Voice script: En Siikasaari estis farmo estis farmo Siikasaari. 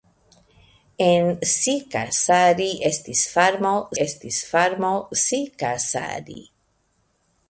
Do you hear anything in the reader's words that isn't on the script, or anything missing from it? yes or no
no